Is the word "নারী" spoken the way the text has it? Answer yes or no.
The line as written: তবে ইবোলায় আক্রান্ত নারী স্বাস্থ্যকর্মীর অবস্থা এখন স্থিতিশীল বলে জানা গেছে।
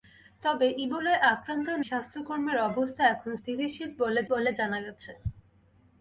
no